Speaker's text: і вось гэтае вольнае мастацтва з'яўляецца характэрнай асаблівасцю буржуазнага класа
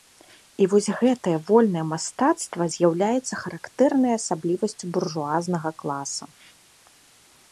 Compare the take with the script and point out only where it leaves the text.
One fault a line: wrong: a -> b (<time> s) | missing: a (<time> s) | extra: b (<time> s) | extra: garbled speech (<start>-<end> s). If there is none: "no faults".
no faults